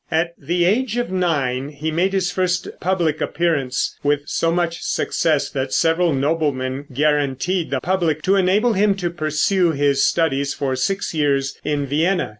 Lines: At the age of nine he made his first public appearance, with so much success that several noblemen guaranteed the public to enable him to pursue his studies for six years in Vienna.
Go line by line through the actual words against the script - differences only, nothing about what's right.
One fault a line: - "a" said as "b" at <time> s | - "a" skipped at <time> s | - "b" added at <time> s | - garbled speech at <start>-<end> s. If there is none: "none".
none